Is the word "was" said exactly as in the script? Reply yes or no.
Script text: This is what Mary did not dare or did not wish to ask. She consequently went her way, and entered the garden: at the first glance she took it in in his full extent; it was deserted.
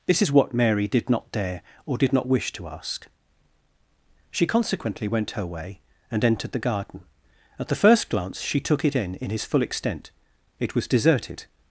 yes